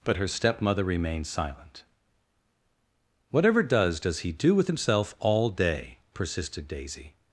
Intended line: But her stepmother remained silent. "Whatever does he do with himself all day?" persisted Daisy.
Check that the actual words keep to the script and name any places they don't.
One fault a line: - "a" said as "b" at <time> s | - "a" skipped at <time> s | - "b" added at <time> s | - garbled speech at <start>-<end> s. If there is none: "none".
- "does" added at 4.0 s